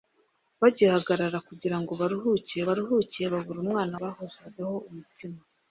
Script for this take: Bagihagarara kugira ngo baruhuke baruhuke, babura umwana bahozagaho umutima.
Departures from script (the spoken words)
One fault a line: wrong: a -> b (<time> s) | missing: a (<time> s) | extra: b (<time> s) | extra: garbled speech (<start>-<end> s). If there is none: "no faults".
no faults